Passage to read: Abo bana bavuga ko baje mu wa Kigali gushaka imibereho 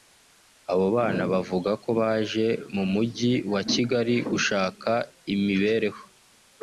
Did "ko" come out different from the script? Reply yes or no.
no